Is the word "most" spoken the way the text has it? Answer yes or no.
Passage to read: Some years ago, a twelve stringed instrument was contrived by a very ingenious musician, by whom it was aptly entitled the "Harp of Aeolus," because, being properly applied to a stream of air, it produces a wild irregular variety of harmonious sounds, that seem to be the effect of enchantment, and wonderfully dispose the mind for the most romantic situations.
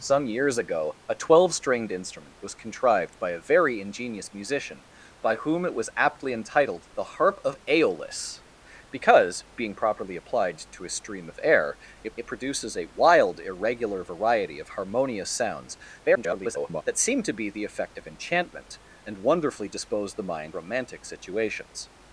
no